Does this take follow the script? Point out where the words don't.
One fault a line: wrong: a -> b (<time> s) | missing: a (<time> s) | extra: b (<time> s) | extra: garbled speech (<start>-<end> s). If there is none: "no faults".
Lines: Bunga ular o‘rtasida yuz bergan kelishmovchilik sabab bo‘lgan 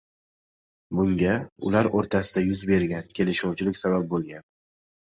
no faults